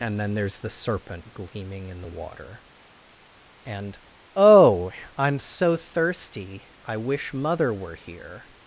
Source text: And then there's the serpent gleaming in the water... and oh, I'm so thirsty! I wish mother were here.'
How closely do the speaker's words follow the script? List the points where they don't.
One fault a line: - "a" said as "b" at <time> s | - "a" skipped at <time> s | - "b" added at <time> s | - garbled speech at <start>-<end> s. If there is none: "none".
none